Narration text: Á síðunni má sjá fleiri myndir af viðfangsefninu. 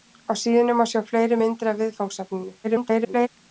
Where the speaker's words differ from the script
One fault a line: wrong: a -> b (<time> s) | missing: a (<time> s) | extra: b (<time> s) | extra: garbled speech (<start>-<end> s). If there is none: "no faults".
extra: garbled speech (2.6-3.3 s)